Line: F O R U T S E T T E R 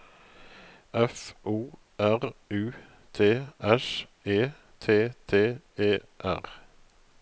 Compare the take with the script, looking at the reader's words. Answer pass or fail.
pass